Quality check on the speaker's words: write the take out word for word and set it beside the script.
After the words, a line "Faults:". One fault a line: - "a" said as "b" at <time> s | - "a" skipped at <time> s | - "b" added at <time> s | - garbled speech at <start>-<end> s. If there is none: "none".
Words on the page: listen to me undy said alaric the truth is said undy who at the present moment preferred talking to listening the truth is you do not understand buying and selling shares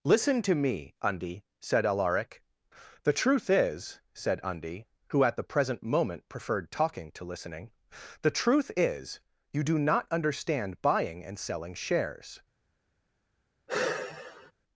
listen to me undy said alaric the truth is said undy who at the present moment preferred talking to listening the truth is you do not understand buying and selling shares
Faults:
none